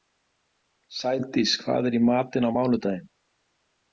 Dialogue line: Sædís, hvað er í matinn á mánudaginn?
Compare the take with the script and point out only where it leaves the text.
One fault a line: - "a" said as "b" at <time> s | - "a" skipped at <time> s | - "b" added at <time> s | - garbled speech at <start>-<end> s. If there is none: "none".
none